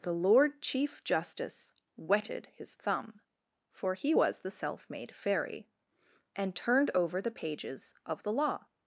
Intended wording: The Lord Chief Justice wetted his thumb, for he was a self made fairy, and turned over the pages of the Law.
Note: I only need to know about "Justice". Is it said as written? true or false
true